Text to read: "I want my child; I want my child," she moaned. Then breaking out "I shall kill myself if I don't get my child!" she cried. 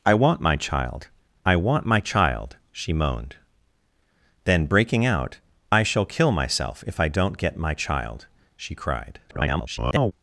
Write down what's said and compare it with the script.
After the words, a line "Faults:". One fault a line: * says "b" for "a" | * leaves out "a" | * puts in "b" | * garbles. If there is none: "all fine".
"I want my child; I want my child," she moaned. Then breaking out "I shall kill myself if I don't get my child!" she cried. [garbled]
Faults:
* garbles